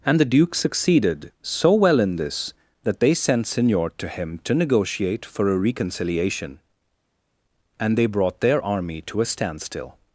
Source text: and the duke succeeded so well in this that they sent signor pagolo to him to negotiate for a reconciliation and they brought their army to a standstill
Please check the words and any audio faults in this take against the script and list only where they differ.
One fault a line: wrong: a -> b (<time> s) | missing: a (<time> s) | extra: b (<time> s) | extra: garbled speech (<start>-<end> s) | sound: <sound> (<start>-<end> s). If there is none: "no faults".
missing: pagolo (3.9 s)